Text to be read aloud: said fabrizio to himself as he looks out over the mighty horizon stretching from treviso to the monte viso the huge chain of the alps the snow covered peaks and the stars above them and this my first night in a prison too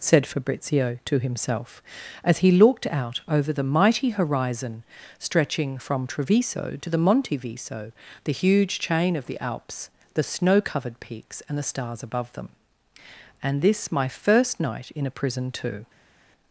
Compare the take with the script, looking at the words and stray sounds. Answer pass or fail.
fail